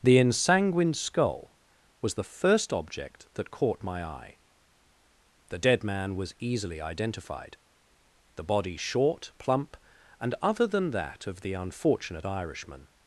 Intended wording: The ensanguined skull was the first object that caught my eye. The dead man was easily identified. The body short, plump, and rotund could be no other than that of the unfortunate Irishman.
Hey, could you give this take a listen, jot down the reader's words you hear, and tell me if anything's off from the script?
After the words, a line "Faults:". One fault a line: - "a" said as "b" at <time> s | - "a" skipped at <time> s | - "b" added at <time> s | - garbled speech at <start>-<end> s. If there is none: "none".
The ensanguined skull was the first object that caught my eye. The dead man was easily identified. The body short, plump, and other than that of the unfortunate Irishman.
Faults:
- "rotund could be no" skipped at 10.3 s